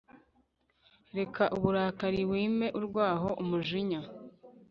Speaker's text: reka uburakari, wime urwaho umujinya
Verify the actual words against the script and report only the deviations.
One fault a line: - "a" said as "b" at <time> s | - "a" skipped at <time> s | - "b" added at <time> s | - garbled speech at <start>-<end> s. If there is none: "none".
none